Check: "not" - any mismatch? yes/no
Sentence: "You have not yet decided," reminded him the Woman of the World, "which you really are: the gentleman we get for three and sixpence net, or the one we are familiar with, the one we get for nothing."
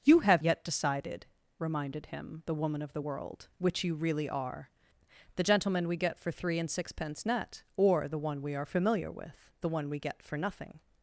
yes